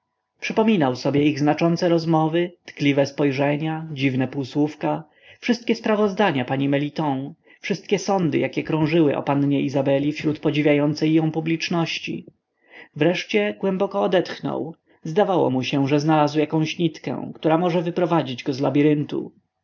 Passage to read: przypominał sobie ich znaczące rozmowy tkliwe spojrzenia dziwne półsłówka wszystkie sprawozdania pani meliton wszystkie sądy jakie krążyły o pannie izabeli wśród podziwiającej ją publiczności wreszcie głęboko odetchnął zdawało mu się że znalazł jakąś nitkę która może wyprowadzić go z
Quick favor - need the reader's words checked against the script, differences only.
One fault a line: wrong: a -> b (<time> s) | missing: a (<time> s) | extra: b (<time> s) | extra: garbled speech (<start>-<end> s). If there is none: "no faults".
no faults